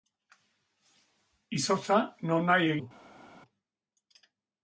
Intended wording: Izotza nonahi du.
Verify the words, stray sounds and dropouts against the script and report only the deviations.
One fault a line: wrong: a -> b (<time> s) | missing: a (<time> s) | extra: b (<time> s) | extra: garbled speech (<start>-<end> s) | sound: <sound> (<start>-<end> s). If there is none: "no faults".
no faults